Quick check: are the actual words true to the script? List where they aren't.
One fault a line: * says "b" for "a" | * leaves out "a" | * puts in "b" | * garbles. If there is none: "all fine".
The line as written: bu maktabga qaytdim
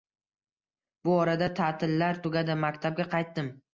* puts in "orada tatillar tugadi"